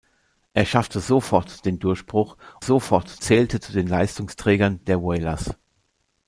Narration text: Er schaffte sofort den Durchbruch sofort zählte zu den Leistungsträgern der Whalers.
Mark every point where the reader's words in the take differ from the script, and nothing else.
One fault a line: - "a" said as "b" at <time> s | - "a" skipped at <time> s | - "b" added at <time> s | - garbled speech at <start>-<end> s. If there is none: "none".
none